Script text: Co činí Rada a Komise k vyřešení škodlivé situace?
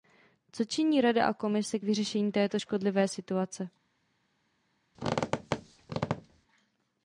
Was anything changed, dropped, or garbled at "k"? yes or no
no